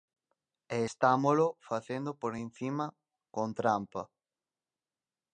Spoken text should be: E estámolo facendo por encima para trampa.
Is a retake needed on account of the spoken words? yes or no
yes